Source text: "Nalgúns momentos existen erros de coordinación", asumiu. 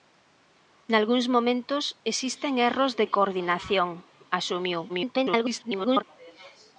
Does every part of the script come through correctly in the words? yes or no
no